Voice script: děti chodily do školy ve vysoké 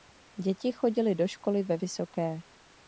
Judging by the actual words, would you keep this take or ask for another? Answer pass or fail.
pass